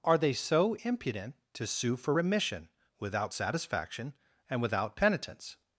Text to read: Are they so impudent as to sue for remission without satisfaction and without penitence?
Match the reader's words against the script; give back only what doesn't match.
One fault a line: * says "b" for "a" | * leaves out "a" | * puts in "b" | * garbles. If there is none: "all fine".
* leaves out "as"